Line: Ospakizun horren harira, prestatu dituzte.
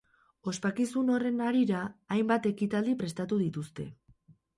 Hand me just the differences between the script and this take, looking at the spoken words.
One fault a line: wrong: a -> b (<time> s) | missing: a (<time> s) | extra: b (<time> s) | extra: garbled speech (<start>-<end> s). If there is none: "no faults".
extra: hainbat ekitaldi (2.1 s)